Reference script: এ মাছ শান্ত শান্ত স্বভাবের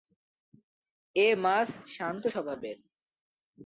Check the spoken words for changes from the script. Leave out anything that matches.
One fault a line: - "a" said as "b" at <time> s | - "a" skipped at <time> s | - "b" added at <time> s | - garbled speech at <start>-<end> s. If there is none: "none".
- "শান্ত" skipped at 2.2 s